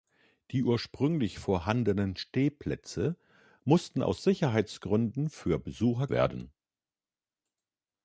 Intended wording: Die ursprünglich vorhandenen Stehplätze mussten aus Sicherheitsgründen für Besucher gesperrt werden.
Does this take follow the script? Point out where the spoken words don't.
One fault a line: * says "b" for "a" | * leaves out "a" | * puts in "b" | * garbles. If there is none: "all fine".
* leaves out "gesperrt"